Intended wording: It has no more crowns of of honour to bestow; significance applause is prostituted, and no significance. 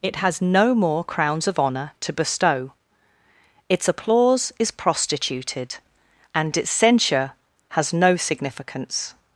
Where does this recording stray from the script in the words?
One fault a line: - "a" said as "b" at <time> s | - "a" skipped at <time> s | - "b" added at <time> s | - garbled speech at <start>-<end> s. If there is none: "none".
- "of" skipped at 1.6 s
- "significance" said as "its" at 3.7 s
- "its censure has" added at 6.5 s